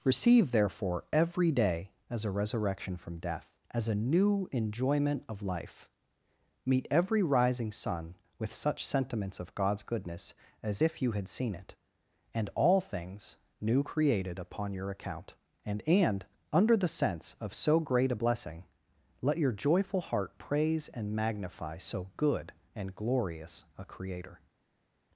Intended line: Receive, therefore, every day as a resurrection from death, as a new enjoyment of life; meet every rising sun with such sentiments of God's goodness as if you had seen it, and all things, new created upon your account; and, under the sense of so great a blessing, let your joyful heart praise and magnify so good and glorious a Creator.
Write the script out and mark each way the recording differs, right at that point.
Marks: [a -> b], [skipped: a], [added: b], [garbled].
Receive, therefore, every day as a resurrection from death, as a new enjoyment of life; meet every rising sun with such sentiments of God's goodness as if you had seen it, and all things, new created upon your account; and, [added: and] under the sense of so great a blessing, let your joyful heart praise and magnify so good and glorious a Creator.